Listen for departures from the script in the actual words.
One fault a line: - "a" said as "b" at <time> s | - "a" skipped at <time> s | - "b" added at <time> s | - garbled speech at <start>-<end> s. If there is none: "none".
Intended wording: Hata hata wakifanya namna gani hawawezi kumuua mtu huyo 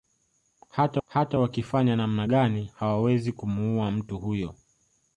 none